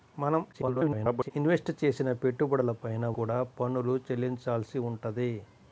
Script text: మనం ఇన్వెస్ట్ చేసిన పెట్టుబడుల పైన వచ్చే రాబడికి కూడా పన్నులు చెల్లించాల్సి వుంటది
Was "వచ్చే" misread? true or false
true